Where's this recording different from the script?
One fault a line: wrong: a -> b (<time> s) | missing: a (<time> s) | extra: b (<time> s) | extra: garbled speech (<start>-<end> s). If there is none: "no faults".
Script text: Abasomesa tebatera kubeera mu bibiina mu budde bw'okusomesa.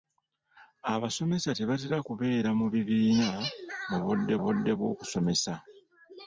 extra: budde (4.4 s)